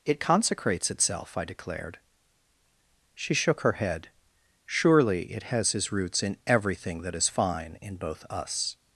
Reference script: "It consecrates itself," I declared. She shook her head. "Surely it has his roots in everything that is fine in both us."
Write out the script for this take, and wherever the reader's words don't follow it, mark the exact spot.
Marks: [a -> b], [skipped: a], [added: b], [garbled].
"It consecrates itself," I declared. She shook her head. "Surely it has his roots in everything that is fine in both us."